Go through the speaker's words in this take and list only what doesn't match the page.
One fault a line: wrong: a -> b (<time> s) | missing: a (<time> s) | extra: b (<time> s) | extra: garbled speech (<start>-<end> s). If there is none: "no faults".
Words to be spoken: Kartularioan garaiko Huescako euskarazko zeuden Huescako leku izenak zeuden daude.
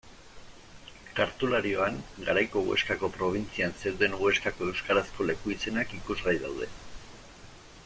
wrong: euskarazko -> probintzian (3.2 s)
extra: euskarazko (4.7 s)
wrong: zeuden -> ikusgai (6.0 s)